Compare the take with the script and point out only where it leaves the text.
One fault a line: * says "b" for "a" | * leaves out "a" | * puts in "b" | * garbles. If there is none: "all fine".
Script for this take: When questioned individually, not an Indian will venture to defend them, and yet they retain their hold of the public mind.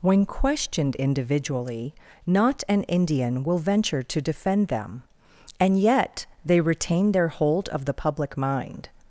all fine